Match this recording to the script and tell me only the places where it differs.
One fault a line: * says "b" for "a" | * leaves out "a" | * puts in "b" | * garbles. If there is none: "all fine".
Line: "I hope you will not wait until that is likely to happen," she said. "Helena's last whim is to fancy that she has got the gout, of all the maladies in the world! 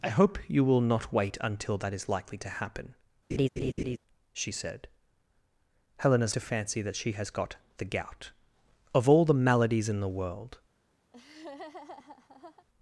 * leaves out "last whim is"